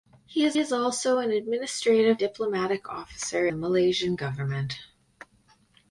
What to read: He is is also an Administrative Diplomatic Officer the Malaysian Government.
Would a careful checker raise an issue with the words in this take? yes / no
no